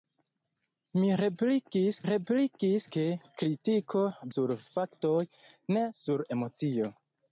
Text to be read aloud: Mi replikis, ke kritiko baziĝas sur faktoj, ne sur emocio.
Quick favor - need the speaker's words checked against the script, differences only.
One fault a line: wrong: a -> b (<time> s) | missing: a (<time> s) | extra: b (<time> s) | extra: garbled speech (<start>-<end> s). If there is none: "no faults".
extra: replikis (2.1 s)
missing: baziĝas (4.0 s)